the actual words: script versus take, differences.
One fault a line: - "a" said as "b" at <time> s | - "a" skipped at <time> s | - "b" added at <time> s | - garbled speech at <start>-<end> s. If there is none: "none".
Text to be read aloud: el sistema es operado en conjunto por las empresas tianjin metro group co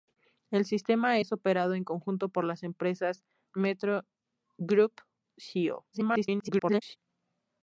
- "tianjin" skipped at 3.2 s
- garbled speech at 5.9-7.0 s